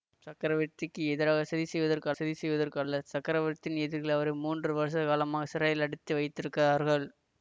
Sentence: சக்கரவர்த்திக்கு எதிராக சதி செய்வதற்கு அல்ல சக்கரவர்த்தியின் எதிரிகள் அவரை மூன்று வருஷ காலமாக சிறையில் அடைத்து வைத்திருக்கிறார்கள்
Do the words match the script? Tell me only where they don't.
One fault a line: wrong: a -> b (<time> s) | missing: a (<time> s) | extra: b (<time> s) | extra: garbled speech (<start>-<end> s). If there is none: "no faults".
extra: சதி செய்வதற்கு (2.1 s)